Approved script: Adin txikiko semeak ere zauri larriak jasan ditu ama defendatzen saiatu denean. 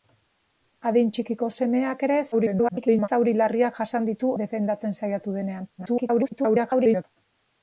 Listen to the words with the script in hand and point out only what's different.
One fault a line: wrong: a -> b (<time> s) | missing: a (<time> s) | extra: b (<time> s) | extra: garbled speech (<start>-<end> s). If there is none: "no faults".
extra: garbled speech (2.3-3.1 s)
missing: ama (4.3 s)
extra: garbled speech (5.8-7.0 s)